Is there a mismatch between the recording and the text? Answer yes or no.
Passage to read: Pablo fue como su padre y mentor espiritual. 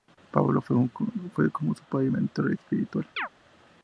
no